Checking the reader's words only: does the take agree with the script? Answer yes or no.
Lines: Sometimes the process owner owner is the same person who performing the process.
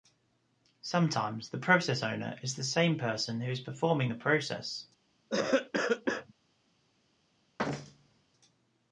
no